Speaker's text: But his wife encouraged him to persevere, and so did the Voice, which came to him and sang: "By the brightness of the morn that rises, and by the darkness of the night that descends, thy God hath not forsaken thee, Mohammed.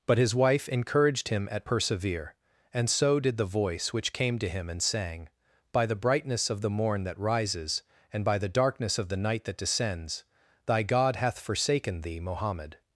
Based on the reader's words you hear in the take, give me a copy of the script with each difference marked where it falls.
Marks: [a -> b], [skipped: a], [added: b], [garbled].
But his wife encouraged him [to -> at] persevere, and so did the Voice, which came to him and sang: "By the brightness of the morn that rises, and by the darkness of the night that descends, thy God hath [skipped: not] forsaken thee, Mohammed.